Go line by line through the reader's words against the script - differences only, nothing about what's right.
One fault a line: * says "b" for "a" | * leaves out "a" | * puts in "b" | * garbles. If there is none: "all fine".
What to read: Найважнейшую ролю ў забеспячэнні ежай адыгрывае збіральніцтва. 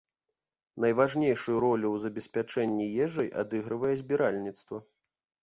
all fine